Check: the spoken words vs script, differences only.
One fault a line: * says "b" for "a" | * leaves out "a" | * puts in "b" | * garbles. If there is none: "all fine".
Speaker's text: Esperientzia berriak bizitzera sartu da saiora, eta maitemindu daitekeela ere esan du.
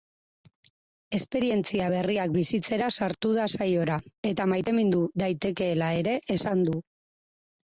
all fine